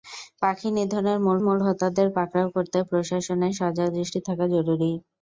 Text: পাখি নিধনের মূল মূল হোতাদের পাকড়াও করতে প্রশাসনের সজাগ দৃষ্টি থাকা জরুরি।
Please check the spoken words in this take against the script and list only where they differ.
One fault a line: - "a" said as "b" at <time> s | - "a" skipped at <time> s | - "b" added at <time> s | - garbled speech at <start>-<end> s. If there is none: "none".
none